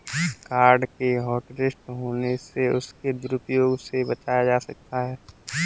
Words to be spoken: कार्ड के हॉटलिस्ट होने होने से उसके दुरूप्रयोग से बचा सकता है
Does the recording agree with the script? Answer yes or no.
no